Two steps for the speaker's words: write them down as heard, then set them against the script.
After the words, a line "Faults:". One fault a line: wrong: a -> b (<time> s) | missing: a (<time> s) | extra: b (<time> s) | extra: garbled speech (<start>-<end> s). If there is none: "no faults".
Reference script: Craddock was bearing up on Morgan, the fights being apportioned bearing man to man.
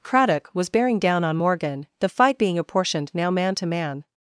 Craddock was bearing down on Morgan, the fight being apportioned now man to man.
Faults:
wrong: up -> down (1.0 s)
wrong: fights -> fight (2.1 s)
wrong: bearing -> now (3.1 s)